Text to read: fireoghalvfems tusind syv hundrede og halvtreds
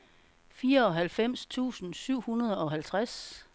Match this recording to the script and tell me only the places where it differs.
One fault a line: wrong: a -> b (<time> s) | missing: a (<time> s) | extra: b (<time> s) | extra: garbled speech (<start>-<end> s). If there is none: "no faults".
no faults